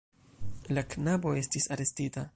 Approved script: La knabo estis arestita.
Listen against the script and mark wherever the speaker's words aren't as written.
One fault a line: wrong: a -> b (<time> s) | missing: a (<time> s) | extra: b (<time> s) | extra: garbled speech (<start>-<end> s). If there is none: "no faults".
no faults